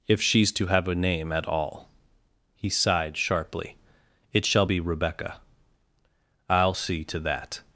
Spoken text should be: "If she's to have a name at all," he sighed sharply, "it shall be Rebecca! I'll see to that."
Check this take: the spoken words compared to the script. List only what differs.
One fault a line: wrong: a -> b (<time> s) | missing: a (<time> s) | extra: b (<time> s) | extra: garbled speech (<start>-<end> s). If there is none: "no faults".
no faults